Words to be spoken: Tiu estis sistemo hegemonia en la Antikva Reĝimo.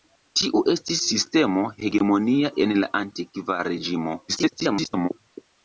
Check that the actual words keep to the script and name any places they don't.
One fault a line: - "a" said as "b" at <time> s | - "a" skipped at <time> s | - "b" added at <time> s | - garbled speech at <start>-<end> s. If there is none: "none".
- garbled speech at 4.3-5.1 s